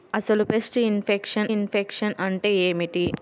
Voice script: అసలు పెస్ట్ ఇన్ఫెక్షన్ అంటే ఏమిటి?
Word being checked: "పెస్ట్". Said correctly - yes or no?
yes